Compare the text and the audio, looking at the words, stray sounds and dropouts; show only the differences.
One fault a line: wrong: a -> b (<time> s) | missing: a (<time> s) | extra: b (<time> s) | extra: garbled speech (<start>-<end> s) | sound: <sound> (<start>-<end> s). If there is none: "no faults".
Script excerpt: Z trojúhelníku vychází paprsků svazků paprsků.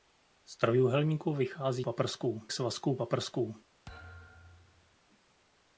sound: thud (3.9-5.0 s)